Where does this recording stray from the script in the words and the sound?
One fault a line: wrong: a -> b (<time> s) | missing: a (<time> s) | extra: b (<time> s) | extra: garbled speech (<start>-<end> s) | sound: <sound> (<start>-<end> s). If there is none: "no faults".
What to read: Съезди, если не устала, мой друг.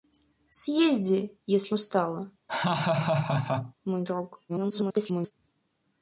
missing: не (1.8 s)
sound: laugh (2.5-3.7 s)
extra: garbled speech (4.5-5.3 s)